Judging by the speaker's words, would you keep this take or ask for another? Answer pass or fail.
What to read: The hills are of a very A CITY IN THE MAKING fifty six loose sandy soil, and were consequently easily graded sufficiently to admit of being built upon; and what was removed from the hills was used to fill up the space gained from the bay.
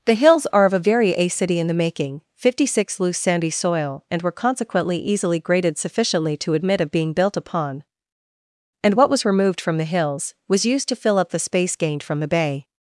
pass